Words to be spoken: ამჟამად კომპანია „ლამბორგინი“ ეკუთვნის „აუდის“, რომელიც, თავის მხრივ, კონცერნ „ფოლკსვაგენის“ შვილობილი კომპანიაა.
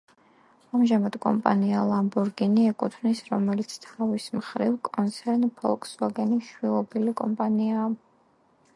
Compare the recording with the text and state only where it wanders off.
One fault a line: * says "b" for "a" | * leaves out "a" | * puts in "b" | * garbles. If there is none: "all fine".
* leaves out "აუდის"